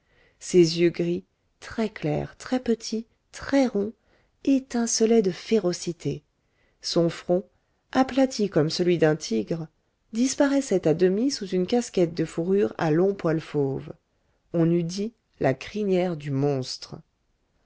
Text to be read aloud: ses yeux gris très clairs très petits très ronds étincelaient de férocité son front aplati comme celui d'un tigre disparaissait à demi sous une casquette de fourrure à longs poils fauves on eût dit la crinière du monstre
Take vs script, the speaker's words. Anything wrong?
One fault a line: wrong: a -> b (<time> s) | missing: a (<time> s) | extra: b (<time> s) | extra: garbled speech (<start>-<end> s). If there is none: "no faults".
no faults